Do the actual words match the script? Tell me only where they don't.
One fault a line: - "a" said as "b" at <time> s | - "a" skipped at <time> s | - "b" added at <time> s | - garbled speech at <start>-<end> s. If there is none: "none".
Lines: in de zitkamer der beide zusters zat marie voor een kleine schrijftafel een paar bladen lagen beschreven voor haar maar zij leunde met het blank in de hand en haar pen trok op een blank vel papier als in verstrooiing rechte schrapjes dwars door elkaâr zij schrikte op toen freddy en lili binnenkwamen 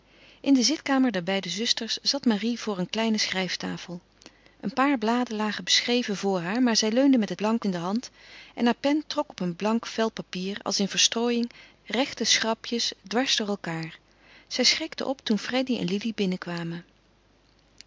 none